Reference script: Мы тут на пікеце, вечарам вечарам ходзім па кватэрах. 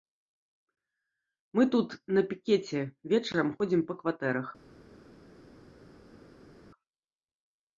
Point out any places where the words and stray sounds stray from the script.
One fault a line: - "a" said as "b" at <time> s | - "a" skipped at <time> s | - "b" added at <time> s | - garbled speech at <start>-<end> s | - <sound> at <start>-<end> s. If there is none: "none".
- "вечарам" skipped at 3.5 s